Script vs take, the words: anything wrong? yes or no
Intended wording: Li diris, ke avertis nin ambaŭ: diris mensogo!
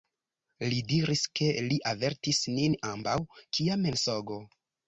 yes